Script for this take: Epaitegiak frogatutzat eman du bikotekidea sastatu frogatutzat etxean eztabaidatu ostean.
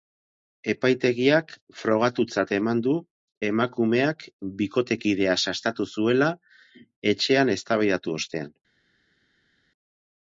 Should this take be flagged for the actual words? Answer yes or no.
yes